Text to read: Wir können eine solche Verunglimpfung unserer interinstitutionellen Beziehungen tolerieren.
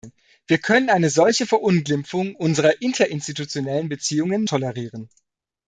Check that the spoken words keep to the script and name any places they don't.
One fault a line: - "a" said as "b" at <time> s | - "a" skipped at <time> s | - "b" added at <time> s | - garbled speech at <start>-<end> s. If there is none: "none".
none